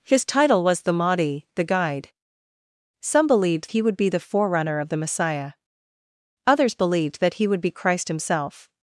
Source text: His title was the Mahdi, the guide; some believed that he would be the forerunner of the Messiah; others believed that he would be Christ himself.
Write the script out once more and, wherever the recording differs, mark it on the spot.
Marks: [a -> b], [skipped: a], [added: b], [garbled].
His title was the Mahdi, the guide; some believed [skipped: that] he would be the forerunner of the Messiah; others believed that he would be Christ himself.